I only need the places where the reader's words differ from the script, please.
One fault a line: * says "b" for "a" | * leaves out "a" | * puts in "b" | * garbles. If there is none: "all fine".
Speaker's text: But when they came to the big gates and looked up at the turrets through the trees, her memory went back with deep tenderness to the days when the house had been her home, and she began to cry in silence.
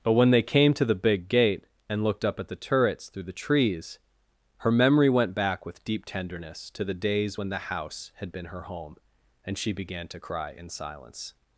* says "gate" for "gates"